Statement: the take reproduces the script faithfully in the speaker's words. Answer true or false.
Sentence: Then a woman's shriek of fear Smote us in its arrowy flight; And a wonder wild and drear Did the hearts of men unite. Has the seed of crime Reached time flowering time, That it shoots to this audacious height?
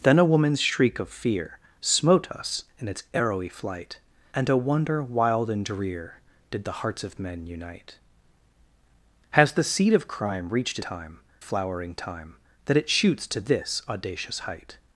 true